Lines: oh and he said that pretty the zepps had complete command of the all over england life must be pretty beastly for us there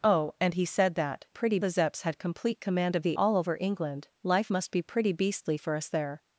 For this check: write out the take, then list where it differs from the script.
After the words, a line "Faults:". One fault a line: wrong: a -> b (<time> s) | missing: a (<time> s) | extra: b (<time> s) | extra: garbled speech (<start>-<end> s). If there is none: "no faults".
oh and he said that pretty the zepps had complete command of the all over england life must be pretty beastly for us there
Faults:
no faults